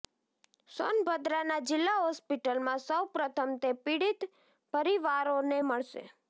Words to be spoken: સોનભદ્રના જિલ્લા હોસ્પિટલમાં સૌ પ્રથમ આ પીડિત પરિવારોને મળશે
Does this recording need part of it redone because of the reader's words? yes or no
yes